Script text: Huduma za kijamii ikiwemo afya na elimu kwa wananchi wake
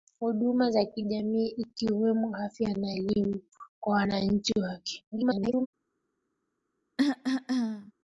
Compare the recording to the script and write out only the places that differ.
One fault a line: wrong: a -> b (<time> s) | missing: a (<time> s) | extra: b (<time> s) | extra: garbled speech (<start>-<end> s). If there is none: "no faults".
extra: garbled speech (5.1-5.7 s)